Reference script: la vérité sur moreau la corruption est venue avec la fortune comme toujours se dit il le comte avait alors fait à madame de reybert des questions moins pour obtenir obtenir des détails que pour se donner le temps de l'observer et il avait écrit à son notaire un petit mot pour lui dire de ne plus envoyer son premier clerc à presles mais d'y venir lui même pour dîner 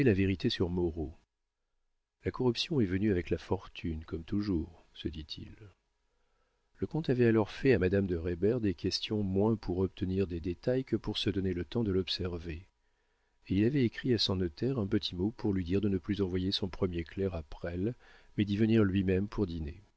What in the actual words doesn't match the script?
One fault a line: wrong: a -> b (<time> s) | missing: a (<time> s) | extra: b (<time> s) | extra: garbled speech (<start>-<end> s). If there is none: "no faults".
missing: obtenir (10.3 s)